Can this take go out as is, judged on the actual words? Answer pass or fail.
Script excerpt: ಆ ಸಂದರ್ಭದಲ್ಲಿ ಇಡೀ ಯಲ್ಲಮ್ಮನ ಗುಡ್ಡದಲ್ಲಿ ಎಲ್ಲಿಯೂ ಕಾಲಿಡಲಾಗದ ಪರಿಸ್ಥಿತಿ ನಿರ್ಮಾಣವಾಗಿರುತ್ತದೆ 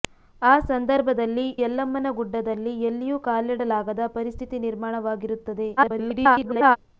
fail